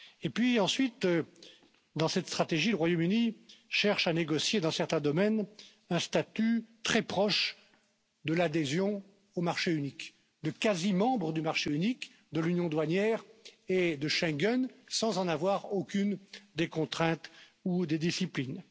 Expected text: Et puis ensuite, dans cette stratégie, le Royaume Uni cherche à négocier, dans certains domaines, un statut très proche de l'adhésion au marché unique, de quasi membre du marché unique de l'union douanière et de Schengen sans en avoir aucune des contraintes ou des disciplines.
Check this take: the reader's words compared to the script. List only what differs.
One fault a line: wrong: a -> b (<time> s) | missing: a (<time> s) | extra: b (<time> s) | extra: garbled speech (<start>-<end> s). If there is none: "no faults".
no faults